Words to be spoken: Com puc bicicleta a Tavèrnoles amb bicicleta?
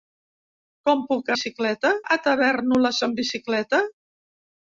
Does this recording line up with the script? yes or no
yes